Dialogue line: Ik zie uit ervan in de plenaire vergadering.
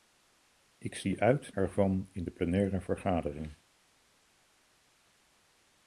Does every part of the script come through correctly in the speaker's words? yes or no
yes